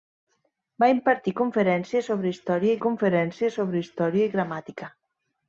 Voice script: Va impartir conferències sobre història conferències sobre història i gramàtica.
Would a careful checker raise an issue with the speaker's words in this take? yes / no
no